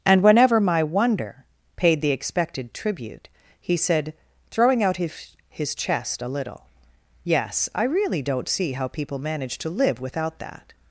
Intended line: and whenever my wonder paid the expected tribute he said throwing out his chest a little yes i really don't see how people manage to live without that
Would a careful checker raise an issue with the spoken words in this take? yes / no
yes